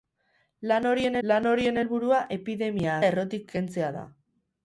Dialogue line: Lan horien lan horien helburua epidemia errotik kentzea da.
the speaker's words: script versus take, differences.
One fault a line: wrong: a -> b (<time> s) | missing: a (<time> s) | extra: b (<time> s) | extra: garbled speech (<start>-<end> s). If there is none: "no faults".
no faults